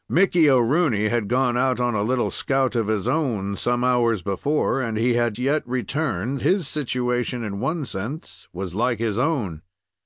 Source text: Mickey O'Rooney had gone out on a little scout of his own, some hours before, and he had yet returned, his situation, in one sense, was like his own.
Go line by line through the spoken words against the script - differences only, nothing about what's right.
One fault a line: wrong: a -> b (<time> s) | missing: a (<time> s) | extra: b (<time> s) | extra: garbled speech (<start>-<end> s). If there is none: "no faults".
no faults